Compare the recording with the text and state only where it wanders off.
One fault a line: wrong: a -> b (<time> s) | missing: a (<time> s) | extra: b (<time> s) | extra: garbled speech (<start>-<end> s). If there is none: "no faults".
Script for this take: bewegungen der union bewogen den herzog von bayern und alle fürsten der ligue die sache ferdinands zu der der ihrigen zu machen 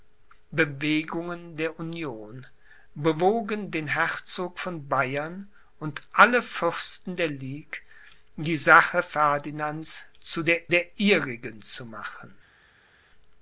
no faults